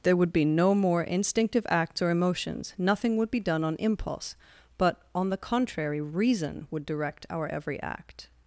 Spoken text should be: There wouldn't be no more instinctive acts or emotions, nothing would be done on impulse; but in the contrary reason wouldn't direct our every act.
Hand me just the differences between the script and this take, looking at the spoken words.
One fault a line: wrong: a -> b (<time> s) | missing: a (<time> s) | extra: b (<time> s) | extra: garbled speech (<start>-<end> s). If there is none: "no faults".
wrong: wouldn't -> would (0.1 s)
wrong: in -> on (5.1 s)
wrong: wouldn't -> would (6.7 s)